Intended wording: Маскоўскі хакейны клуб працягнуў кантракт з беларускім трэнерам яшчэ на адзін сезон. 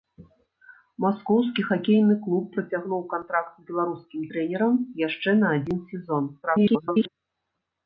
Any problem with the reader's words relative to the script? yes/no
yes